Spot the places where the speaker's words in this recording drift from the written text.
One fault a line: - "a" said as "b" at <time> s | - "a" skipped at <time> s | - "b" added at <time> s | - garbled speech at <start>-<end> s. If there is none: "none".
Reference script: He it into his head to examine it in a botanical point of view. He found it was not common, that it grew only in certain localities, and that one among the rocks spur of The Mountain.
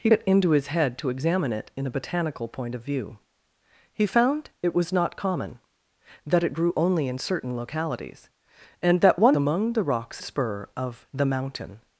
none